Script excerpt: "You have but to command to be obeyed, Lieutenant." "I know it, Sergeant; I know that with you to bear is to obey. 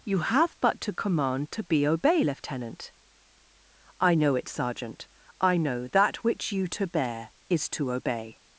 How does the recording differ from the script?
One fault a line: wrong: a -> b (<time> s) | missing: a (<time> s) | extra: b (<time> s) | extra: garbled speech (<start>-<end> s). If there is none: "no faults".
wrong: obeyed -> obey (1.9 s)
wrong: with -> which (6.2 s)